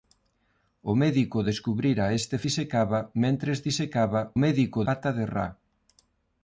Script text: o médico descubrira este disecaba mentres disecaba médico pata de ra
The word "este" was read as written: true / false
true